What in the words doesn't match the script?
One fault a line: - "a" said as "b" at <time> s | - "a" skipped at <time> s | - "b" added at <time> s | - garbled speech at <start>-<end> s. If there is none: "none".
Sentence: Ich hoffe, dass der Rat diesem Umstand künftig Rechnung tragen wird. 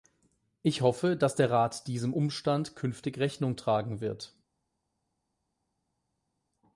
none